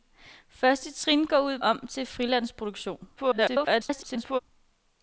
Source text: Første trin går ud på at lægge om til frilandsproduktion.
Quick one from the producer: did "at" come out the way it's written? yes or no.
no